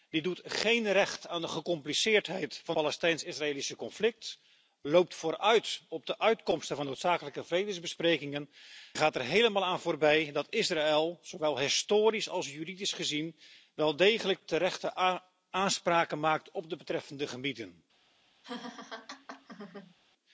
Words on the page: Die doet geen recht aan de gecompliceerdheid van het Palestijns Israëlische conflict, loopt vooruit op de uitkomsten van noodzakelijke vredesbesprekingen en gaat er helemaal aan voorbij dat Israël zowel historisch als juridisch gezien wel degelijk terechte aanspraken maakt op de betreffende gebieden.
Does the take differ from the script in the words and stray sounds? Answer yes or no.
yes